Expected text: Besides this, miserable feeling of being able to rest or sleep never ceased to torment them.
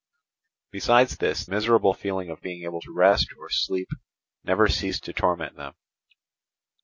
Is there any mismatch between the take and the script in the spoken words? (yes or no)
no